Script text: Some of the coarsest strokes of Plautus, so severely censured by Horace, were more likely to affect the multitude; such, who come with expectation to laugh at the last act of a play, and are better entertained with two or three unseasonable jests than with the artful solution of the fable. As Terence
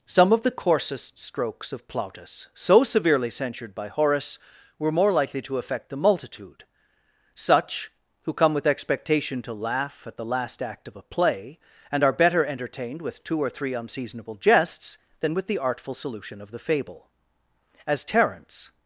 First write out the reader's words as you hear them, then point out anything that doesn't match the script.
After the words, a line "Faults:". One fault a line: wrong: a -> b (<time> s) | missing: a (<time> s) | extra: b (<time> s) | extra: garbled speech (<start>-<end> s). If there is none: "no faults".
Some of the coarsest strokes of Plautus, so severely censured by Horace, were more likely to affect the multitude; such, who come with expectation to laugh at the last act of a play, and are better entertained with two or three unseasonable jests than with the artful solution of the fable. As Terence
Faults:
no faults